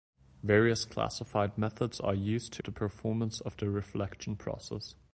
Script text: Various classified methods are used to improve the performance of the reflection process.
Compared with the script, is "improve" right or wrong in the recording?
wrong